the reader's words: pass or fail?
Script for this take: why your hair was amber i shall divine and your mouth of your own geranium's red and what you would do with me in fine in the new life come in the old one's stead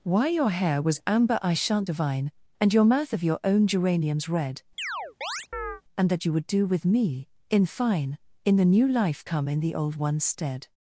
fail